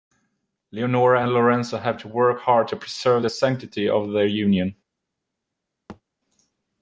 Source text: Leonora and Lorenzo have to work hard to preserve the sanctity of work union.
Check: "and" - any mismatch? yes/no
no